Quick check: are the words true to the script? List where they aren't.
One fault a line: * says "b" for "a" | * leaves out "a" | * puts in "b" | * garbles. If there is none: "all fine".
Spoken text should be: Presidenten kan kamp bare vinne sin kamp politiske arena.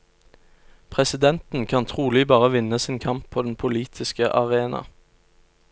* says "trolig" for "kamp"
* puts in "på den"